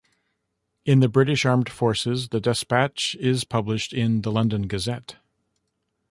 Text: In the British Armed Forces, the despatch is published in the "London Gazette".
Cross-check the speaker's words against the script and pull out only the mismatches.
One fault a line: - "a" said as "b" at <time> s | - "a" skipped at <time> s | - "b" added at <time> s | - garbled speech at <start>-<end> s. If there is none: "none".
none